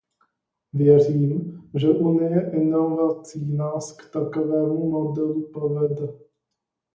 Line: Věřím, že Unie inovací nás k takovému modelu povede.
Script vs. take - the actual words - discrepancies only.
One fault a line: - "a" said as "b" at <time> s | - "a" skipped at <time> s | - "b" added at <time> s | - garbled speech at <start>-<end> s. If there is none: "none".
none